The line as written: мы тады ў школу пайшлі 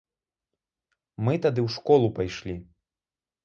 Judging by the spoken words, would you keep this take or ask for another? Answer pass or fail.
pass